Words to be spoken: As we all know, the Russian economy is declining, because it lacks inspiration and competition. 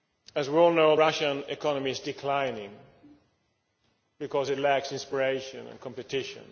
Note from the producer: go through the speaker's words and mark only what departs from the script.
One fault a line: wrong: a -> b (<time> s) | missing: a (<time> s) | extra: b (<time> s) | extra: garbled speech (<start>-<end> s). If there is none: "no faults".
missing: the (0.9 s)